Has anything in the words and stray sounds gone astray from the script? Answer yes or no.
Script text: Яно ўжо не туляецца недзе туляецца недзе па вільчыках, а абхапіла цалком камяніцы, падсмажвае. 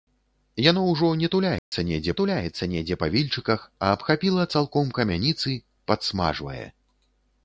yes